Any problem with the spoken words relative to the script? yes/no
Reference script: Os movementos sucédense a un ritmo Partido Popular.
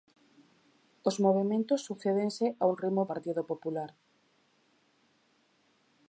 no